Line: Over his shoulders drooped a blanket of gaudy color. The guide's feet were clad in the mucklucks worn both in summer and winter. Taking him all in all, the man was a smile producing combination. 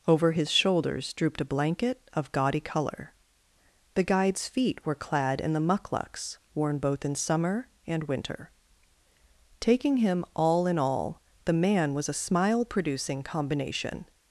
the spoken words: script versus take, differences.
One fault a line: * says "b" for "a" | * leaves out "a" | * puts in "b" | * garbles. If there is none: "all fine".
all fine